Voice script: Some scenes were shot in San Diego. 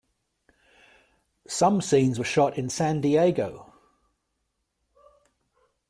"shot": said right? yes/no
yes